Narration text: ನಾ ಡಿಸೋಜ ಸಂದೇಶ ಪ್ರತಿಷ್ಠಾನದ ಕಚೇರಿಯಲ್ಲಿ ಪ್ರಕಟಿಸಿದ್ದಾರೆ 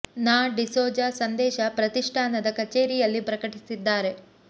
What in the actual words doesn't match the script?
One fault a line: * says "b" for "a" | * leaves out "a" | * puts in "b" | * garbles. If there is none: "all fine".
all fine